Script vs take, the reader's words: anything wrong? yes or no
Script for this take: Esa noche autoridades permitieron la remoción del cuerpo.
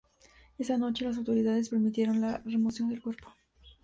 yes